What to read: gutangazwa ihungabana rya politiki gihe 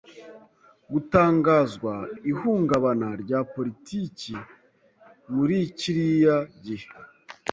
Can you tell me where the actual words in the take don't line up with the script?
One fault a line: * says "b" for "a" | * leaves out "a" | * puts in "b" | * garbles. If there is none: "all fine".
* puts in "muri kiriya"